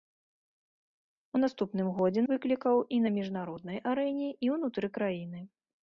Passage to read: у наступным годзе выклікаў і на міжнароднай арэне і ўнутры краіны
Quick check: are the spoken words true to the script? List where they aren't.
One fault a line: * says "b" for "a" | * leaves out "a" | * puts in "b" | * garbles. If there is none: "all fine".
all fine